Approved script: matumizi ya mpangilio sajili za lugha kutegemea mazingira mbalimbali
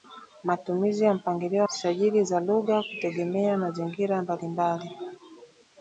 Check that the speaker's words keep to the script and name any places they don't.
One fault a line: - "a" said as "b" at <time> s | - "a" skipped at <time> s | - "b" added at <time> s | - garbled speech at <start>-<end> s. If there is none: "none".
none